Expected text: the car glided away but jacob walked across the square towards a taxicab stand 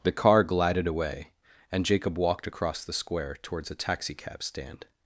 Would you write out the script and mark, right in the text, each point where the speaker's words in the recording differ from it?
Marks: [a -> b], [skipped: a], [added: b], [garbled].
the car glided away [but -> and] jacob walked across the square towards a taxicab stand